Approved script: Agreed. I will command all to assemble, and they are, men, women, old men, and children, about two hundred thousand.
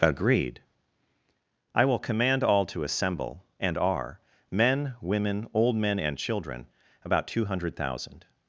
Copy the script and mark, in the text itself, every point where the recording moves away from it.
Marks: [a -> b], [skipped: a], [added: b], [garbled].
Agreed. I will command all to assemble, and [skipped: they] are, men, women, old men, and children, about two hundred thousand.